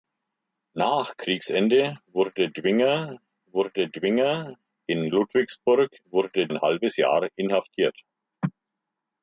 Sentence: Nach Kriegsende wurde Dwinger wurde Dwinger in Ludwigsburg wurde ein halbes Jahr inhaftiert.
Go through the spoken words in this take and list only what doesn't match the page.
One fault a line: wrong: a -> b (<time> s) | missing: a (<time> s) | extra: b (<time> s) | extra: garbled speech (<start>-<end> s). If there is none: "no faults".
no faults